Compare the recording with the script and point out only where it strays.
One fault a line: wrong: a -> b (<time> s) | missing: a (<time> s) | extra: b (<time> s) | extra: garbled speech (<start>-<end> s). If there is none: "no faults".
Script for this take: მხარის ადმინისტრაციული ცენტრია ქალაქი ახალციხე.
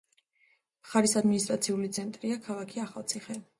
no faults